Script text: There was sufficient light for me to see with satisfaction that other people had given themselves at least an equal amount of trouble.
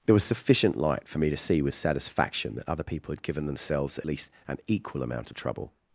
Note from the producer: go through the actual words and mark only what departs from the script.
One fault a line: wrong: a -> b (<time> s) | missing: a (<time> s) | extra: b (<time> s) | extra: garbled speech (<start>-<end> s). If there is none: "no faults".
no faults